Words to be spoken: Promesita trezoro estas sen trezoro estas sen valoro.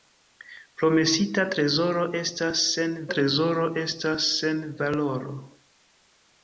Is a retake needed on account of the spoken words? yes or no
no